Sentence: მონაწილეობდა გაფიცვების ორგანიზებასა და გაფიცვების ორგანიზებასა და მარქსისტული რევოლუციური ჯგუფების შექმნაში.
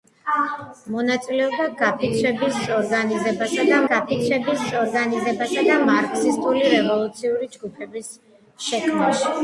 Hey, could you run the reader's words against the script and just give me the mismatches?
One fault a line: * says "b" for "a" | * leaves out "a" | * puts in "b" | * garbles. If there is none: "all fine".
all fine